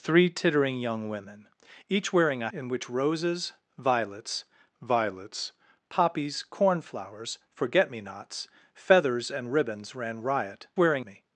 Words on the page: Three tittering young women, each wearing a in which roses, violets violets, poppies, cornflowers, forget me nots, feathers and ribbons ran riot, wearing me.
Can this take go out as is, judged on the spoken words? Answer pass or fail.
pass